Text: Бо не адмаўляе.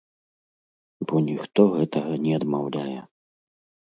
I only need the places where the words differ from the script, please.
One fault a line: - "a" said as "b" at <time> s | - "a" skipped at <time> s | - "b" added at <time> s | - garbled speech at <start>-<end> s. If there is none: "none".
- "ніхто гэтага" added at 1.3 s